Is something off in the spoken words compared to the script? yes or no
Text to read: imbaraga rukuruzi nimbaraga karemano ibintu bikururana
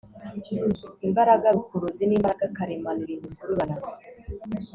no